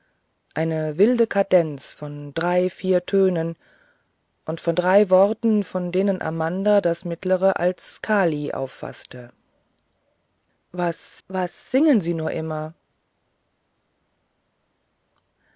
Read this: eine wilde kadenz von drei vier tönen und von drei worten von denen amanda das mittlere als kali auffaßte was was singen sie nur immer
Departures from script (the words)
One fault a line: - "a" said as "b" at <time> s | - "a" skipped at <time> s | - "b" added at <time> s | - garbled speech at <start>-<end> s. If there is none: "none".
none